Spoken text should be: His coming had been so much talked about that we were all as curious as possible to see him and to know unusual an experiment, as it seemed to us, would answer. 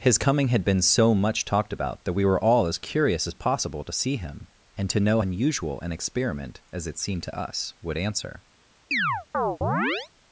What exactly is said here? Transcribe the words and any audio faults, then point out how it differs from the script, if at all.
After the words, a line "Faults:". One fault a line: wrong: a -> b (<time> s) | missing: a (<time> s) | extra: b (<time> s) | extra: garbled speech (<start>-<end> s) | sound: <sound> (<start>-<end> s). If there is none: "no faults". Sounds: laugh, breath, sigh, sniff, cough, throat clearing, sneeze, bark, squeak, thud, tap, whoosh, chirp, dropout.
His coming had been so much talked about that we were all as curious as possible to see him and to know unusual an experiment, as it seemed to us, would answer.
Faults:
sound: chirp (8.9-10.1 s)